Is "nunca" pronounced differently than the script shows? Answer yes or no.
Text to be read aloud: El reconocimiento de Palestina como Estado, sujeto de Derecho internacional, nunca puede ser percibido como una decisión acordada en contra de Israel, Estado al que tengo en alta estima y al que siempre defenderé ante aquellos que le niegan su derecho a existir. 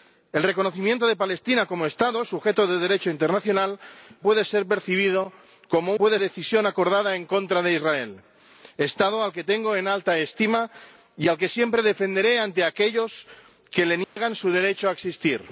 yes